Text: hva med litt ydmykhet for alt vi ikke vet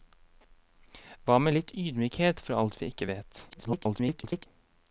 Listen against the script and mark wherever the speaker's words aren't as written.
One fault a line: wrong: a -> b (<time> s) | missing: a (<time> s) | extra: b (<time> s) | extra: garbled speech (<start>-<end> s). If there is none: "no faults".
extra: garbled speech (3.5-4.5 s)